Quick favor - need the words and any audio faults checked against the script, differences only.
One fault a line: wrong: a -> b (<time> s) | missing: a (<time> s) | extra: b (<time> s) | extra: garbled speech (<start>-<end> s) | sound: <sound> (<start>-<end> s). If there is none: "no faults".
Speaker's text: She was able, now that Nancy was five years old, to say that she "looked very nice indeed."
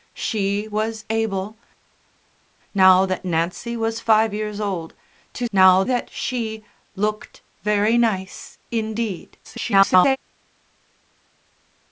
wrong: say -> now (5.5 s)
extra: garbled speech (9.4-10.2 s)